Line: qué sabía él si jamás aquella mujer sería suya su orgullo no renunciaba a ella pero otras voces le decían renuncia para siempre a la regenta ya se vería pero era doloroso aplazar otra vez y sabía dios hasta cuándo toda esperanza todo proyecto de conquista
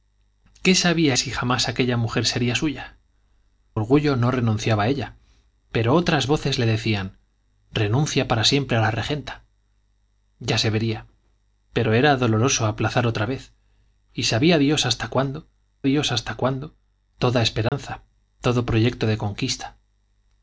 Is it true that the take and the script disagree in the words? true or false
true